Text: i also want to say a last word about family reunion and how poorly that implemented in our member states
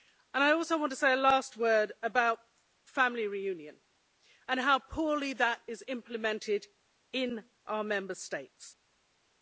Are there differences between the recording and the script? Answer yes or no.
yes